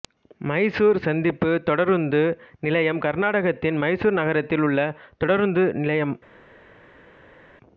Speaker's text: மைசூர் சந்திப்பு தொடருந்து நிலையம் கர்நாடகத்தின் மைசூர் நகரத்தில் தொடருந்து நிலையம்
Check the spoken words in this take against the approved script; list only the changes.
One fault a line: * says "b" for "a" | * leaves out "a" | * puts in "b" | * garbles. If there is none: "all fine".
* puts in "உள்ள"